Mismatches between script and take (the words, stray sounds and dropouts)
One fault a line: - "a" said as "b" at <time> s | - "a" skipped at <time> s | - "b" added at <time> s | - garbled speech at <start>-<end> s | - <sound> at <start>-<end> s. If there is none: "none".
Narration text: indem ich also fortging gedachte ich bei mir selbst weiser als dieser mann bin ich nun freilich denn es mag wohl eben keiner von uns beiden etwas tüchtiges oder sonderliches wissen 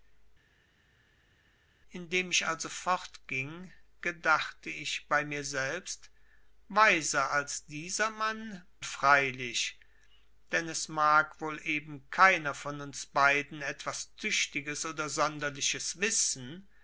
- "bin ich nun" skipped at 8.7 s